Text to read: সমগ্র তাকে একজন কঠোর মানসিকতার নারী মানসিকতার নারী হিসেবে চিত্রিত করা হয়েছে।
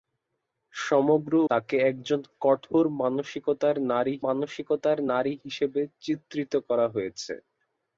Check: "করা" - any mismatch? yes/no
no